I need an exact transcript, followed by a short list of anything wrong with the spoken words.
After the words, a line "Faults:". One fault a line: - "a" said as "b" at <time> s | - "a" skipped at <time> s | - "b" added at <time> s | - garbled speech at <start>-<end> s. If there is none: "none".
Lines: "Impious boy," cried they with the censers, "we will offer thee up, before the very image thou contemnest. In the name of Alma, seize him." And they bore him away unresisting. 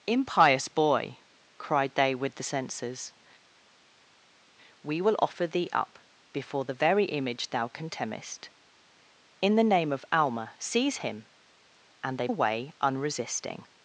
"Impious boy," cried they with the censers, "we will offer thee up, before the very image thou contemnest. In the name of Alma, seize him." And they away unresisting.
Faults:
- "bore him" skipped at 12.3 s